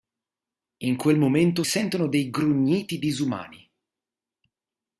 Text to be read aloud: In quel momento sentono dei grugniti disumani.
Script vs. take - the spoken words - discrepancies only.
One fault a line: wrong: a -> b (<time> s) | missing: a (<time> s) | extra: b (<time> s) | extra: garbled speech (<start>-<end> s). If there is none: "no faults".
no faults